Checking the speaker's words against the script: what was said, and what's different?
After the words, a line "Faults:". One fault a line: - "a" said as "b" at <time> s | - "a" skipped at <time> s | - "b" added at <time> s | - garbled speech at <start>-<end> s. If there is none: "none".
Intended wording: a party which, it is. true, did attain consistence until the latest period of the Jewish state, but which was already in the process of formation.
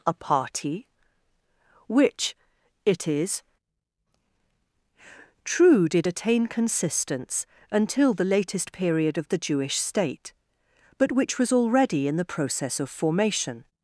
a party which, it is. true, did attain consistence until the latest period of the Jewish state, but which was already in the process of formation.
Faults:
none